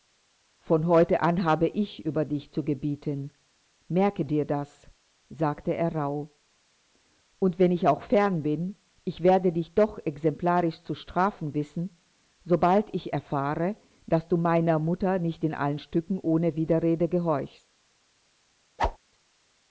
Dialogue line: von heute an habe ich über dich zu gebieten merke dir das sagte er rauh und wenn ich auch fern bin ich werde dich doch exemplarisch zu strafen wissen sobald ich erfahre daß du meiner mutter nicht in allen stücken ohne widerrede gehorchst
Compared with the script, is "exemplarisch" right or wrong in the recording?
right